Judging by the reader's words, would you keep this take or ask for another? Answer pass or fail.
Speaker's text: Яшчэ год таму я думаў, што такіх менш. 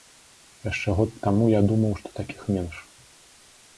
pass